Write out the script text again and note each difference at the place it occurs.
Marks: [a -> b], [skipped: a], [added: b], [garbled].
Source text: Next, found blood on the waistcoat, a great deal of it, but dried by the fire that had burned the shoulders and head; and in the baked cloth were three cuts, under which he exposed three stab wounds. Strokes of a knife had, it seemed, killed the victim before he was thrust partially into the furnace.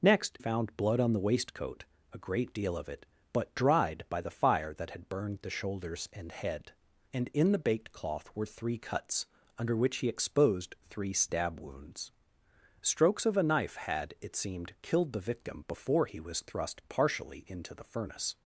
Next, found blood on the waistcoat, a great deal of it, but dried by the fire that had burned the shoulders and head; and in the baked cloth were three cuts, under which he exposed three stab wounds. Strokes of a knife had, it seemed, killed the victim before he was thrust partially into the furnace.